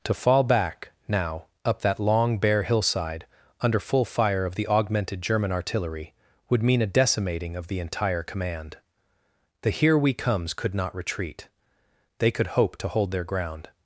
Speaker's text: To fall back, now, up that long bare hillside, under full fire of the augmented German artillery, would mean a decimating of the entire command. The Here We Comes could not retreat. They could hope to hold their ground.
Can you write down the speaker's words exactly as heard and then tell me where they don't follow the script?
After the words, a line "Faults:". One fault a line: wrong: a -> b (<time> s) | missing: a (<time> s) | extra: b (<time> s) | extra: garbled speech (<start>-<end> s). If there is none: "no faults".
To fall back, now, up that long bare hillside, under full fire of the augmented German artillery, would mean a decimating of the entire command. The Here We Comes could not retreat. They could hope to hold their ground.
Faults:
no faults